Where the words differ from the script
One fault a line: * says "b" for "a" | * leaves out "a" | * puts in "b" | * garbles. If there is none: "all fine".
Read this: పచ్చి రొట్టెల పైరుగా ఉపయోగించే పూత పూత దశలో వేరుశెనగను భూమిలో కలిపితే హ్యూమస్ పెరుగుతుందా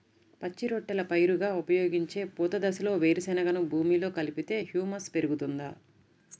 * leaves out "పూత"